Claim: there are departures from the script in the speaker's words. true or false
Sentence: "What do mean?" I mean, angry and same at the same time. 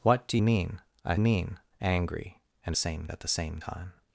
false